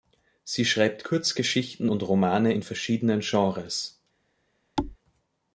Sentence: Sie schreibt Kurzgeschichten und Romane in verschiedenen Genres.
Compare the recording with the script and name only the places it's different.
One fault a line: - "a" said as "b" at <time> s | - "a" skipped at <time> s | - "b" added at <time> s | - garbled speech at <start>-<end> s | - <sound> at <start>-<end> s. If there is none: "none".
- thud at 4.8-5.0 s